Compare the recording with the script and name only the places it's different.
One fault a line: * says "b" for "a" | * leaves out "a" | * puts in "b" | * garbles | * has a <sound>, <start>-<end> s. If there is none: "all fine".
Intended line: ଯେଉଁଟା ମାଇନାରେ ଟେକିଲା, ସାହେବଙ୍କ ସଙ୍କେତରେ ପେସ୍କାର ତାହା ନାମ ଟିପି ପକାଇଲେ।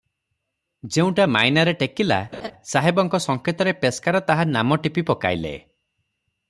* has a laugh, 2.3-2.5 s